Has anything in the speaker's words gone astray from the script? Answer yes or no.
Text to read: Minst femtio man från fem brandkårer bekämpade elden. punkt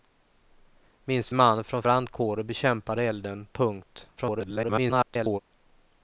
yes